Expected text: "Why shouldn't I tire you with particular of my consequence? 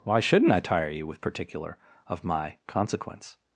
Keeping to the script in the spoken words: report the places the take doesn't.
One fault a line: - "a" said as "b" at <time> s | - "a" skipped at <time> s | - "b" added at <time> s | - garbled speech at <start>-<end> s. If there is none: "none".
none